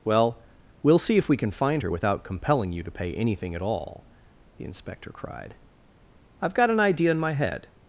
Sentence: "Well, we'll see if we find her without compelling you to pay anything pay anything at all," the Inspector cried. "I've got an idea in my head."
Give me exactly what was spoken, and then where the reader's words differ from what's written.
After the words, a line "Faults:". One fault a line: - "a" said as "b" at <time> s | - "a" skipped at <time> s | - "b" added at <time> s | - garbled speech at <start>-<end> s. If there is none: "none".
"Well, we'll see if we can find her without compelling you to pay anything at all," the Inspector cried. "I've got an idea in my head."
Faults:
- "can" added at 1.4 s
- "pay anything" skipped at 3.5 s